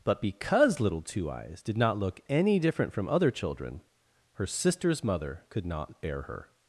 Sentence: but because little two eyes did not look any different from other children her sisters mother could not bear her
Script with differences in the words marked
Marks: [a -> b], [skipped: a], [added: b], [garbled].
but because little two eyes did not look any different from other children her sisters mother could not bear her